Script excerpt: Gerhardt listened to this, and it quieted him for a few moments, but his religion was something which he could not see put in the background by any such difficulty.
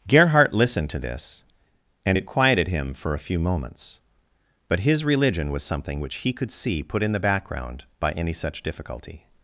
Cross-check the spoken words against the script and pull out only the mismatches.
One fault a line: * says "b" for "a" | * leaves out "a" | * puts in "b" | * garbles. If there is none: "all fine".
* leaves out "not"